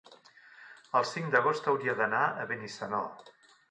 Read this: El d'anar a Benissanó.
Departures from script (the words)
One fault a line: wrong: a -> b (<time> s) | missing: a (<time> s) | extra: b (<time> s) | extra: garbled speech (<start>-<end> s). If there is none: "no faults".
extra: cinc d'agost hauria (1.1 s)